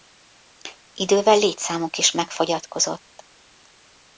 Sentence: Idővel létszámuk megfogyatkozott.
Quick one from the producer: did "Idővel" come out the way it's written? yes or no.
yes